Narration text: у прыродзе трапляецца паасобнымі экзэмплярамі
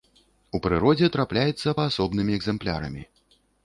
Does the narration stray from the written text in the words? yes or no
no